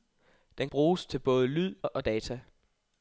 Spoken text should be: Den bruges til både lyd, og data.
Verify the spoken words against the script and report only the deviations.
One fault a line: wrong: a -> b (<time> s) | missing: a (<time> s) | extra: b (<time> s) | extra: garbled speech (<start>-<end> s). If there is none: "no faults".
no faults